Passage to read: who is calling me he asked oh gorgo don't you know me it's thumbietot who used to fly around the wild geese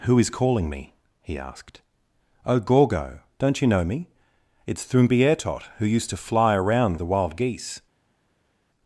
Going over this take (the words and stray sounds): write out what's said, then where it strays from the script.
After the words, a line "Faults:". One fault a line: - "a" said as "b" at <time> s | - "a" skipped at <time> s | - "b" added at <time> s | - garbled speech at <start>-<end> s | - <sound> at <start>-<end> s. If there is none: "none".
who is calling me he asked oh gorgo don't you know me it's thumbietot who used to fly around the wild geese
Faults:
none